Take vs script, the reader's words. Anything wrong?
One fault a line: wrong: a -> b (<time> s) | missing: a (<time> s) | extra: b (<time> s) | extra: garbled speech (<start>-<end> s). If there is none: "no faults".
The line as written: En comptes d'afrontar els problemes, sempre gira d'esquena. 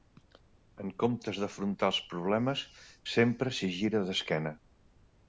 extra: s'hi (3.6 s)